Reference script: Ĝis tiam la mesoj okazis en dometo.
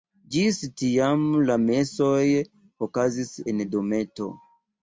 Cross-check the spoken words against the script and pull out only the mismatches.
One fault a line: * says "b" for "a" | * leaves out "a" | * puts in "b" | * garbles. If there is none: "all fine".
all fine